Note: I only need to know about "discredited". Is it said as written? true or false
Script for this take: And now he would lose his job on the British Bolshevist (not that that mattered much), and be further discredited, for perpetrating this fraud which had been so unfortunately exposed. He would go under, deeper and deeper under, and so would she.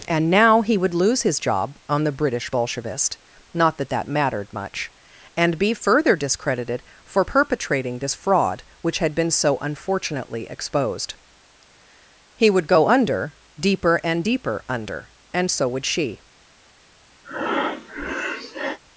true